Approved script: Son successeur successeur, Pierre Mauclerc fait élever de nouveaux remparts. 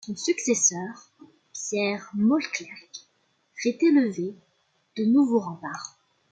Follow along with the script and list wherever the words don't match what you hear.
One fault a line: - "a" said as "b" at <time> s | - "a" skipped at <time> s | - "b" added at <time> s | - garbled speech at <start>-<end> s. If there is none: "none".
- "successeur" skipped at 1.1 s